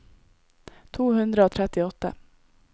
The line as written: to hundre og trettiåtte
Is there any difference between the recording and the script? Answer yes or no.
no